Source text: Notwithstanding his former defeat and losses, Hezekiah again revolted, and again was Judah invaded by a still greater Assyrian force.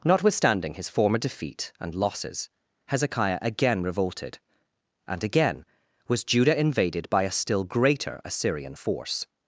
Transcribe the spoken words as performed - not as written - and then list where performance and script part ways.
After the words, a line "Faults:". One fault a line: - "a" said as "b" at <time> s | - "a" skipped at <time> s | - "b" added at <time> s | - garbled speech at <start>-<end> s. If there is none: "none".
Notwithstanding his former defeat and losses, Hezekiah again revolted, and again was Judah invaded by a still greater Assyrian force.
Faults:
none